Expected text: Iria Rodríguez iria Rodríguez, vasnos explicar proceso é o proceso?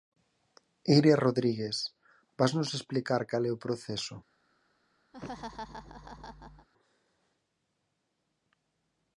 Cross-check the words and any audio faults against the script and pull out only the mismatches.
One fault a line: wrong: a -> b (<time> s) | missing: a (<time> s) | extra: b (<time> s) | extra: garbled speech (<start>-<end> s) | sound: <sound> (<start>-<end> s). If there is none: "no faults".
missing: iria Rodríguez (1.8 s)
wrong: proceso -> cal (3.3 s)
sound: laugh (5.1-6.7 s)